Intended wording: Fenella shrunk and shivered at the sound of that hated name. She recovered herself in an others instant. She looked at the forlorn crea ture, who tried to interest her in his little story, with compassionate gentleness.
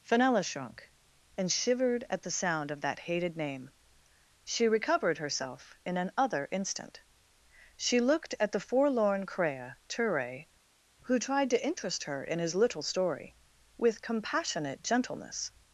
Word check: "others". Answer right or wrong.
wrong